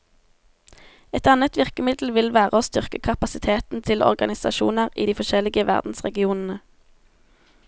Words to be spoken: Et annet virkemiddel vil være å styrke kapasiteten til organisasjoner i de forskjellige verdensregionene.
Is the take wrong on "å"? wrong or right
right